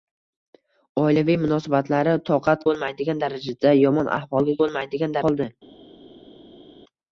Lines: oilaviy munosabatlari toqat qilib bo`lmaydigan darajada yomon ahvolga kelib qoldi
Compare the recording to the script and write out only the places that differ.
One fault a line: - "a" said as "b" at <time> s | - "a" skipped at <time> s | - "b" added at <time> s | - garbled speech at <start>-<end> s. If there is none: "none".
- "qilib" skipped at 2.6 s
- "kelib" said as "bo`lmaydigan" at 4.6 s